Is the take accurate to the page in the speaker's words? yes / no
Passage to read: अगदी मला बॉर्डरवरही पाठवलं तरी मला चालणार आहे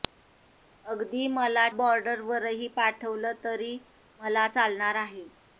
yes